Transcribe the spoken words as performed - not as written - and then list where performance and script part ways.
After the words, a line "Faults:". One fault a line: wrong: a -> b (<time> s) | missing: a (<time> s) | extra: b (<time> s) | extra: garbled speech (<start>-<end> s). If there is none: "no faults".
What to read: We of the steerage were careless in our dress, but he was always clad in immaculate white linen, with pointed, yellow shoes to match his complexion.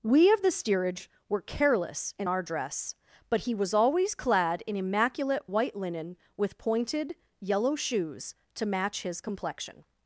We of the steerage were careless in our dress, but he was always clad in immaculate white linen, with pointed, yellow shoes to match his complexion.
Faults:
no faults